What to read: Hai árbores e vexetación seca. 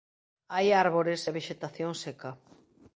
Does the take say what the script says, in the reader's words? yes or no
yes